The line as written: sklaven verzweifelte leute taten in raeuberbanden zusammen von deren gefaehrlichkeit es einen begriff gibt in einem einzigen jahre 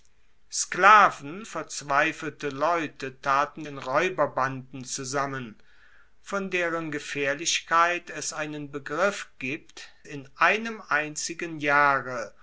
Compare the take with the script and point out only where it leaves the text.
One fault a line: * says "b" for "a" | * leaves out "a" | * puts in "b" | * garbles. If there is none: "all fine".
all fine